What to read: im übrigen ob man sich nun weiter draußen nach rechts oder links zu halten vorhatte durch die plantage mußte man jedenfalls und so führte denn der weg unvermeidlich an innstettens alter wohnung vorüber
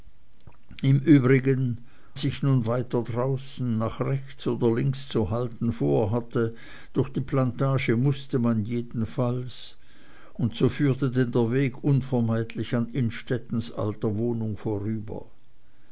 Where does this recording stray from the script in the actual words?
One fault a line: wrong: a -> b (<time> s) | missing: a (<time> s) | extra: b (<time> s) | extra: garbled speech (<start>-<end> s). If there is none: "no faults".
missing: ob man (1.8 s)